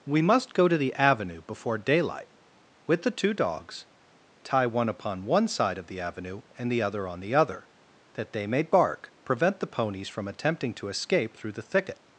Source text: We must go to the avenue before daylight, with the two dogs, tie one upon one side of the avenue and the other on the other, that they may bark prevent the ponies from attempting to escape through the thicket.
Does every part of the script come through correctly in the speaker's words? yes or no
yes